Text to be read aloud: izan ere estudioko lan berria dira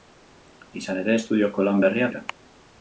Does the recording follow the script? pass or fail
pass